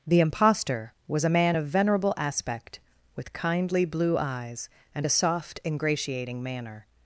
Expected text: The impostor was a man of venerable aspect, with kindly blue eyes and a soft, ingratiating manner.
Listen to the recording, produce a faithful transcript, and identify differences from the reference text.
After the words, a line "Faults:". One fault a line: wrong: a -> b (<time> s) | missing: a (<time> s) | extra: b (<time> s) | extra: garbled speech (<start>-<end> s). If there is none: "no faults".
The impostor was a man of venerable aspect, with kindly blue eyes and a soft, ingratiating manner.
Faults:
no faults